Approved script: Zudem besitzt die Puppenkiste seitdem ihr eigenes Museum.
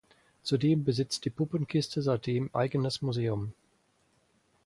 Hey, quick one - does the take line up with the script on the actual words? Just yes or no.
no